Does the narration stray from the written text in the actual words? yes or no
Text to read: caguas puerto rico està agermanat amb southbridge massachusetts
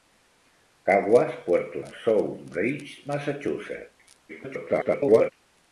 yes